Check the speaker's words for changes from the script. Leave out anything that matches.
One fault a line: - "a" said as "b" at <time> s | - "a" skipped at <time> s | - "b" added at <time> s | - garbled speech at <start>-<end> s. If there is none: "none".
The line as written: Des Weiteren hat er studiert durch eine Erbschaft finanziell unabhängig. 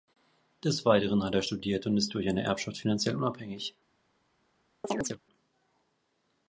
- "und ist" added at 1.9 s